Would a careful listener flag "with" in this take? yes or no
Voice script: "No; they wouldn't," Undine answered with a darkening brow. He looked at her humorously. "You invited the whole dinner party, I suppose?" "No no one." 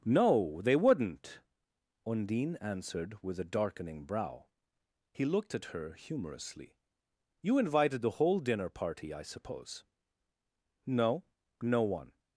no